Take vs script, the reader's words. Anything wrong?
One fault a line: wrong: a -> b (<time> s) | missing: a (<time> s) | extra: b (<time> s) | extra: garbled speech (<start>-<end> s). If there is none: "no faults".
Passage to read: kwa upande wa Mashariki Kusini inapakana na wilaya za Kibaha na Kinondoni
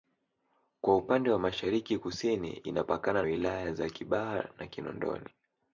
missing: na (3.2 s)